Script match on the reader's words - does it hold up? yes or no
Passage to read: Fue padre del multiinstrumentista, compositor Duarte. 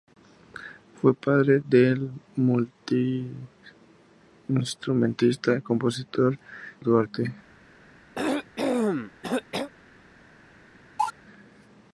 yes